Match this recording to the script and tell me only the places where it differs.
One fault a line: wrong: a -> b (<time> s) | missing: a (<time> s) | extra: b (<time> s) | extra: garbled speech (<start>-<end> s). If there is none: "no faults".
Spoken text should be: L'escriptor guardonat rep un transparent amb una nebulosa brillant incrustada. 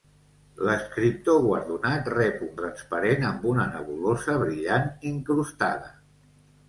no faults